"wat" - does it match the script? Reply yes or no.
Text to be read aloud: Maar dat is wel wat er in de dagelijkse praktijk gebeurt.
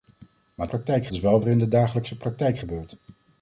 no